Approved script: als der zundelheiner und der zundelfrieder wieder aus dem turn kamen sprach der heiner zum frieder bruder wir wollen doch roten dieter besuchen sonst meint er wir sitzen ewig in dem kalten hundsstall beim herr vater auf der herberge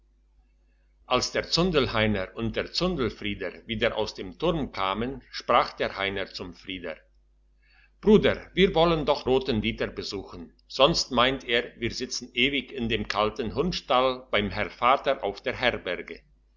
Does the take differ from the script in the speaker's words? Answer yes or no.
no